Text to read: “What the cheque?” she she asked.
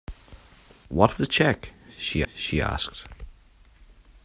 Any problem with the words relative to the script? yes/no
no